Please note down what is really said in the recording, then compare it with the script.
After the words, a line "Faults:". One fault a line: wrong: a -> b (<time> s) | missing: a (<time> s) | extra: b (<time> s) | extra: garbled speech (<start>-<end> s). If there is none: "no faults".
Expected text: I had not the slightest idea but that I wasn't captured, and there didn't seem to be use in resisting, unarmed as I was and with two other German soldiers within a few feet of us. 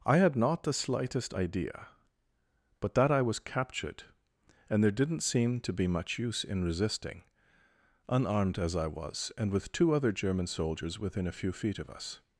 I had not the slightest idea but that I was captured, and there didn't seem to be much use in resisting, unarmed as I was and with two other German soldiers within a few feet of us.
Faults:
wrong: wasn't -> was (3.2 s)
extra: much (5.9 s)